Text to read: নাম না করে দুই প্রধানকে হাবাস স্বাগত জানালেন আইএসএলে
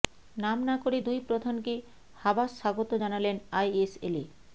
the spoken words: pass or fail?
pass